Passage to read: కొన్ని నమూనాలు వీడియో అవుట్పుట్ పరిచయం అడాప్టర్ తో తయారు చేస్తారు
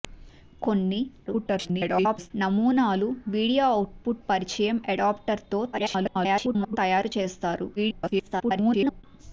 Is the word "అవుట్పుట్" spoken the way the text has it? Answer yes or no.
yes